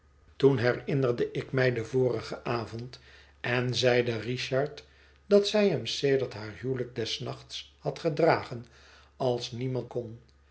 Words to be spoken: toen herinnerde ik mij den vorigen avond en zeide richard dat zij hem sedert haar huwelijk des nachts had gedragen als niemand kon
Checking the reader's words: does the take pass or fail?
pass